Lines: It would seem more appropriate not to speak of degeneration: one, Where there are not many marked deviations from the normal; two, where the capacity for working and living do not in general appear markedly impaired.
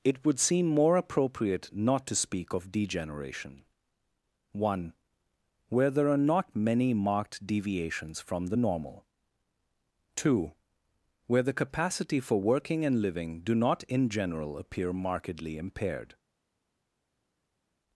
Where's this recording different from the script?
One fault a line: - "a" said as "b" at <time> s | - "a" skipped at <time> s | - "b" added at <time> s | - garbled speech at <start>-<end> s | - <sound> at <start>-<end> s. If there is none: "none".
none